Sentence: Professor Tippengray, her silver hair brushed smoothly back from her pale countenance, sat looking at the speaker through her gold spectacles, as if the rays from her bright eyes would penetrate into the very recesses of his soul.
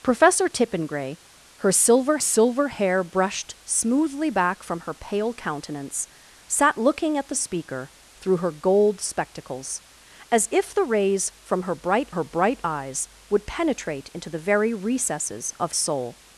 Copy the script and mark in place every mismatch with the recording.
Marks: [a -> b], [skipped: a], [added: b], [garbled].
Professor Tippengray, her silver [added: silver] hair brushed smoothly back from her pale countenance, sat looking at the speaker through her gold spectacles, as if the rays from her bright [added: her bright] eyes would penetrate into the very recesses of [skipped: his] soul.